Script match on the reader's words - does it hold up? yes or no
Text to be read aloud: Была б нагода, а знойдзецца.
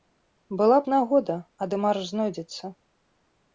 no